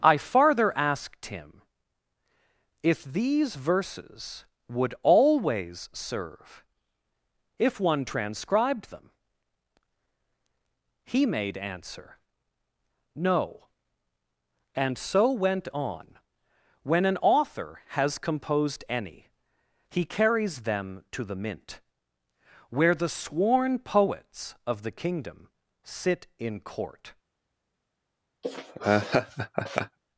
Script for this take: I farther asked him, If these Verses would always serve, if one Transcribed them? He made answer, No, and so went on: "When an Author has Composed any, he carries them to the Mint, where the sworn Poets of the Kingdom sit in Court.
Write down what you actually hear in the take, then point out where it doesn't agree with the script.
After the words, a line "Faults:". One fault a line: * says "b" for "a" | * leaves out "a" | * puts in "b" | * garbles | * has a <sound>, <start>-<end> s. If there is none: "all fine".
I farther asked him, If these Verses would always serve, if one Transcribed them? He made answer, No, and so went on: "When an Author has Composed any, he carries them to the Mint, where the sworn Poets of the Kingdom sit in Court.
Faults:
* has a laugh, 28.4-30.0 s